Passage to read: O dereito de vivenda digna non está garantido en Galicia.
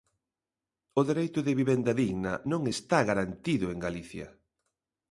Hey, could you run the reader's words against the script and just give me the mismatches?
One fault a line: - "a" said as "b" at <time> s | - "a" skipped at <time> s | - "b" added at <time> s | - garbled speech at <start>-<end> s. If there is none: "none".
none